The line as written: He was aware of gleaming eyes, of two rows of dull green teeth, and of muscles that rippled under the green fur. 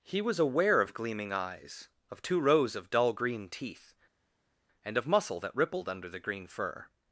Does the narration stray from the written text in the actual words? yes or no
yes